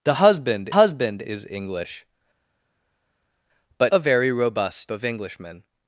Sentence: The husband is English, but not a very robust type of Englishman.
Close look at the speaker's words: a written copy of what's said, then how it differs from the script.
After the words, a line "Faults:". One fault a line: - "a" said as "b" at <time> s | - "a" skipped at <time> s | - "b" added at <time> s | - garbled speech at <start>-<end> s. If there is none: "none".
The husband husband is English, but a very robust of Englishman.
Faults:
- "husband" added at 0.7 s
- "not" skipped at 3.9 s
- "type" skipped at 4.9 s